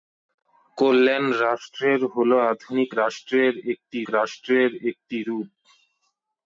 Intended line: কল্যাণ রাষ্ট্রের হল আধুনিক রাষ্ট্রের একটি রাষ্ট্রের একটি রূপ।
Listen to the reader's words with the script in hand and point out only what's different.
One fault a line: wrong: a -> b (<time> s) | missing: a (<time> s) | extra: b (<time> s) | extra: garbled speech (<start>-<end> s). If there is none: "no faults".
no faults